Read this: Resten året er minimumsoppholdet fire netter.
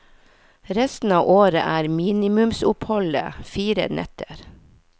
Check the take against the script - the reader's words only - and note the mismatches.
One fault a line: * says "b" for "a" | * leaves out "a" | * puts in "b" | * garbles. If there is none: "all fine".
* puts in "av"